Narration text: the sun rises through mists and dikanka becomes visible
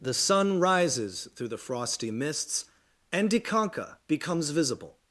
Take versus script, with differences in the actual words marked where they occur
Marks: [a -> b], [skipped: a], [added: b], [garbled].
the sun rises through [added: the frosty] mists and dikanka becomes visible